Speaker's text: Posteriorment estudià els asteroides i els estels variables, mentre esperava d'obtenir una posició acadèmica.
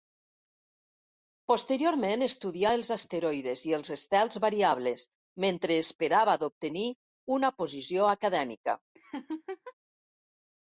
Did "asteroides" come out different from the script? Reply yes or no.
no